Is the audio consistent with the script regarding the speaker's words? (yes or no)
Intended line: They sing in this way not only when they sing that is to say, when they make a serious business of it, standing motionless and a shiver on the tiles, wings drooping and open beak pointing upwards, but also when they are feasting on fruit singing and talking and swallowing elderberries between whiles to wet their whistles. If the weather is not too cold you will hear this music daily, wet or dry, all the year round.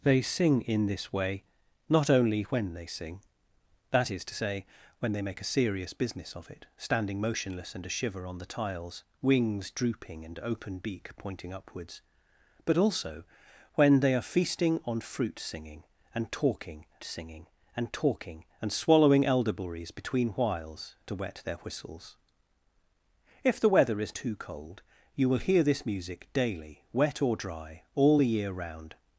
no